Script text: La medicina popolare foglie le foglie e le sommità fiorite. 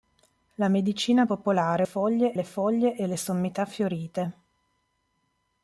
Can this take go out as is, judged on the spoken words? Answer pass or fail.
pass